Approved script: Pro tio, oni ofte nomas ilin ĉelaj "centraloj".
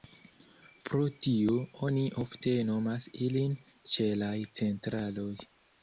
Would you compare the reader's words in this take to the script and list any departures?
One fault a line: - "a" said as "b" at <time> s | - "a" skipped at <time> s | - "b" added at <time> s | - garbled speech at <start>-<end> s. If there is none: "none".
none